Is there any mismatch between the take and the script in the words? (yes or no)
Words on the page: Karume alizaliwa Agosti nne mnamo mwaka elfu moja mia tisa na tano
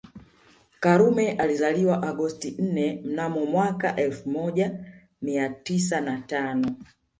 no